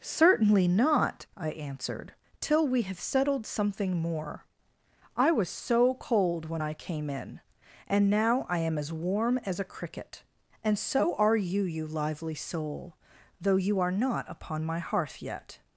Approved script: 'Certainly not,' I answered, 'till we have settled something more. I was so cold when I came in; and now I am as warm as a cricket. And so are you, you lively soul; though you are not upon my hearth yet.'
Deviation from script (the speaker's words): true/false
false